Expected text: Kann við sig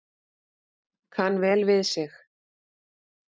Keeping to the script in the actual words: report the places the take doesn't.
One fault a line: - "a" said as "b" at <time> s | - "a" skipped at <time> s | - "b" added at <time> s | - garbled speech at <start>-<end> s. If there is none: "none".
- "vel" added at 1.4 s